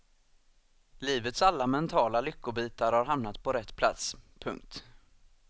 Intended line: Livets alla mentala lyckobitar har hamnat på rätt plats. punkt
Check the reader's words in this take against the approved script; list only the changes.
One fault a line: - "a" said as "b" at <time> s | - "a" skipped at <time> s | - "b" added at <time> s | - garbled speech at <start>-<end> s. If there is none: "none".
none